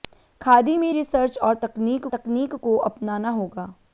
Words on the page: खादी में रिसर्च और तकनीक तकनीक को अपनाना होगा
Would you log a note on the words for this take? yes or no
no